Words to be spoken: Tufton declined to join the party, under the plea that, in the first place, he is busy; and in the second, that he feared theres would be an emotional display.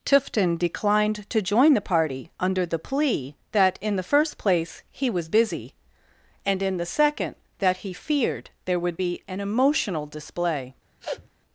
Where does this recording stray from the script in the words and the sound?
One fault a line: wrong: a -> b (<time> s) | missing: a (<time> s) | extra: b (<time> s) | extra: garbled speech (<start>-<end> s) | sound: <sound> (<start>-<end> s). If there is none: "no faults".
wrong: is -> was (5.1 s)
wrong: theres -> there (8.7 s)
sound: sniff (11.0-11.3 s)